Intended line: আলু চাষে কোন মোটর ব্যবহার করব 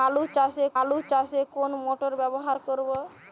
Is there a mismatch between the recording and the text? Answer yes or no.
yes